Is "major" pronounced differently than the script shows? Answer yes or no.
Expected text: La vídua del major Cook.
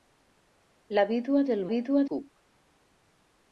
yes